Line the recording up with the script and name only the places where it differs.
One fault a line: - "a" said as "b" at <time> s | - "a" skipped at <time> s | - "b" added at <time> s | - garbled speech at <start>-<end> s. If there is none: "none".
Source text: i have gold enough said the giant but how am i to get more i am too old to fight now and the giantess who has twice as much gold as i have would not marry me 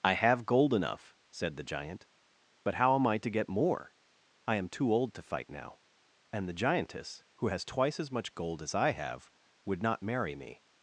none